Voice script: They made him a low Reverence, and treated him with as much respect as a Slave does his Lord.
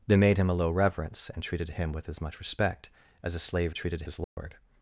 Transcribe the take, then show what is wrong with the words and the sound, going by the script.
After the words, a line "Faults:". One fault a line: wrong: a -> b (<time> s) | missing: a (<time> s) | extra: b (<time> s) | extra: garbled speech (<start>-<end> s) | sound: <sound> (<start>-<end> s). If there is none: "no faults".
They made him a low Reverence, and treated him with as much respect as a Slave treated his Lord.
Faults:
wrong: does -> treated (3.8 s)
sound: dropout (4.2-4.4 s)